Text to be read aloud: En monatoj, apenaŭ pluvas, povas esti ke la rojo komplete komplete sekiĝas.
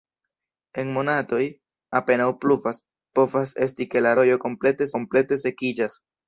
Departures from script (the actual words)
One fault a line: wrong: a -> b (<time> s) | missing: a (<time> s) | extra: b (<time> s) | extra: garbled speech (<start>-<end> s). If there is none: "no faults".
no faults